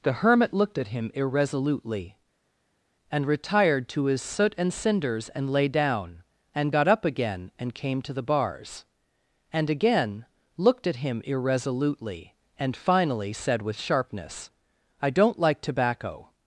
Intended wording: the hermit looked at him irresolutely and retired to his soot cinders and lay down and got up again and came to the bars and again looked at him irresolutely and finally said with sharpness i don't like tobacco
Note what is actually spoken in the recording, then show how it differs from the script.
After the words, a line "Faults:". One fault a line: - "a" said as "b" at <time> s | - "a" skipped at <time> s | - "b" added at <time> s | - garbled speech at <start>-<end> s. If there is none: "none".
the hermit looked at him irresolutely and retired to his soot and cinders and lay down and got up again and came to the bars and again looked at him irresolutely and finally said with sharpness i don't like tobacco
Faults:
- "and" added at 4.6 s